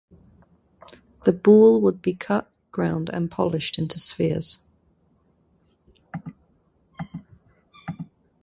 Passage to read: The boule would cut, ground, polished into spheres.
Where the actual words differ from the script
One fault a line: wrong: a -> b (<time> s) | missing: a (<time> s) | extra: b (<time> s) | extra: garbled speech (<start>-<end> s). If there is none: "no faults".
extra: be (2.0 s)
extra: and (3.1 s)